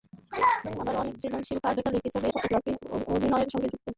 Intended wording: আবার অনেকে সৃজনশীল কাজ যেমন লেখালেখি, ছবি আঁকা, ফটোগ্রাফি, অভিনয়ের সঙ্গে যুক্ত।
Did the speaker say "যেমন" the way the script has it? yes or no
no